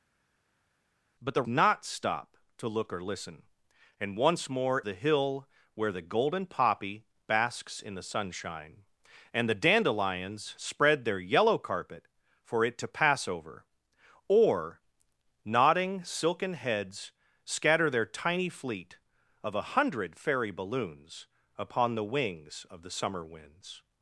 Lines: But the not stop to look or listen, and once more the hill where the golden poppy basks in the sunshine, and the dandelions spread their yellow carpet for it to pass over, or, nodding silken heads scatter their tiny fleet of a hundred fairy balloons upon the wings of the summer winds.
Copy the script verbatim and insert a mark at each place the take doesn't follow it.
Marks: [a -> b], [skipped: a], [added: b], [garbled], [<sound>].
But the not stop to look or listen, and once more the hill where the golden poppy basks in the sunshine, and the dandelions spread their yellow carpet for it to pass over, or, nodding silken heads scatter their tiny fleet of a hundred fairy balloons upon the wings of the summer winds.